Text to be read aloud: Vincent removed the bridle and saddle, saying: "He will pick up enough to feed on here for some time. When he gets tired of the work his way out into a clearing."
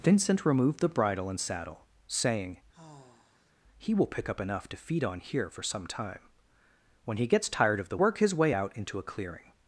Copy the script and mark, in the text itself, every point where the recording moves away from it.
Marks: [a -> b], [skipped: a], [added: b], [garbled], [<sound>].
Vincent removed the bridle and saddle, saying: [sigh] "He will pick up enough to feed on here for some time. When he gets tired of the work his way out into a clearing."